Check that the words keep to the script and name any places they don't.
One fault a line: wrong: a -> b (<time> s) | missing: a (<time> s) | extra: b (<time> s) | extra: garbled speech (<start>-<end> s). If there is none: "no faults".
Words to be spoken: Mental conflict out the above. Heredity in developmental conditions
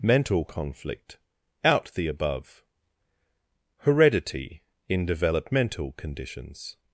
no faults